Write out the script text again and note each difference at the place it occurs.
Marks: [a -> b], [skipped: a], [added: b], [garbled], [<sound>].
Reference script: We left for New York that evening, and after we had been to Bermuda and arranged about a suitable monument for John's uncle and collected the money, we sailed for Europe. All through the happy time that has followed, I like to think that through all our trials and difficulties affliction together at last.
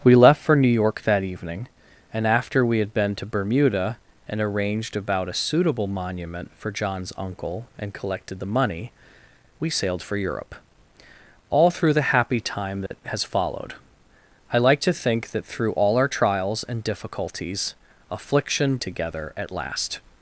We left for New York that evening, and after we had been to Bermuda and arranged about a suitable monument for John's uncle and collected the money, we sailed for Europe. All through the happy time that [dropout] has followed, I like to think that through all our trials and difficulties affliction together at last.